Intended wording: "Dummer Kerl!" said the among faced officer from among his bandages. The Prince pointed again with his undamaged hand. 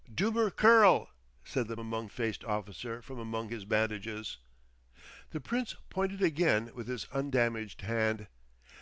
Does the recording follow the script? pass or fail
pass